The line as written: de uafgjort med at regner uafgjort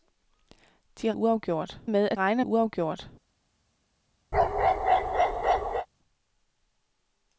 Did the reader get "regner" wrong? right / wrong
right